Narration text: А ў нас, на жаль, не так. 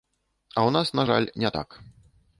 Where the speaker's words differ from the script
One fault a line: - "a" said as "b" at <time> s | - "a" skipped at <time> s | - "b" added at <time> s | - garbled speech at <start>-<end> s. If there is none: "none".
none